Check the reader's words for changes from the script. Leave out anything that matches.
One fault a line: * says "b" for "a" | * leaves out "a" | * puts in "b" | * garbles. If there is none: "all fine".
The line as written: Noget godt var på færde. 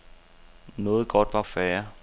* leaves out "på"